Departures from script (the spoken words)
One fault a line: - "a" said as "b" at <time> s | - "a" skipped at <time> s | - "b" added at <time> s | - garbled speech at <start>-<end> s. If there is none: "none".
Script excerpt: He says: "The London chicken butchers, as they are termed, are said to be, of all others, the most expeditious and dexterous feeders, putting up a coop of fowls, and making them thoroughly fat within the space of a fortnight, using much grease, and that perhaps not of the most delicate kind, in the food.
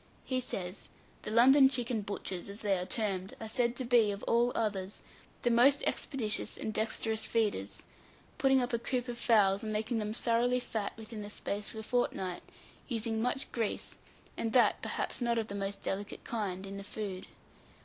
none